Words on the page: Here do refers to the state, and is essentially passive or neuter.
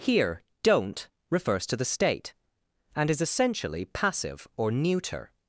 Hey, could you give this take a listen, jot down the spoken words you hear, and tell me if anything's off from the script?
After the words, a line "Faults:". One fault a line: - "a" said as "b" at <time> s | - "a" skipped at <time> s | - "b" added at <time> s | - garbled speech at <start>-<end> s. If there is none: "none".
Here don't refers to the state, and is essentially passive or neuter.
Faults:
- "do" said as "don't" at 0.6 s